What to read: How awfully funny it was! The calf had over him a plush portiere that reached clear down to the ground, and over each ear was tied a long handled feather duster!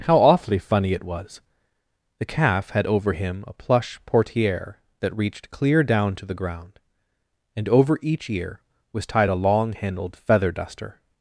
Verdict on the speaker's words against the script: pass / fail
pass